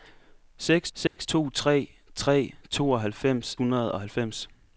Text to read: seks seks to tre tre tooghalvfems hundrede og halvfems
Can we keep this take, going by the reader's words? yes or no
yes